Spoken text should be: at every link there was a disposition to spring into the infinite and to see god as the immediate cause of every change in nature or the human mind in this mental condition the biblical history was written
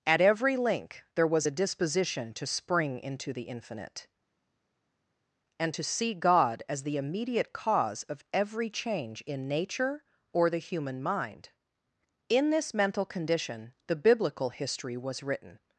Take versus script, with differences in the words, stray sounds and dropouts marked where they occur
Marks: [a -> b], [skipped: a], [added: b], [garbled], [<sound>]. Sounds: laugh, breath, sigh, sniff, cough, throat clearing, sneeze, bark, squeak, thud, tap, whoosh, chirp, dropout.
at every link there was a disposition to spring into the infinite and to see god as the immediate cause of every change in nature or the human mind in this mental condition the biblical history was written